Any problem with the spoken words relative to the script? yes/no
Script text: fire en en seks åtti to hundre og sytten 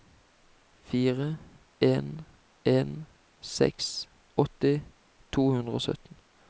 no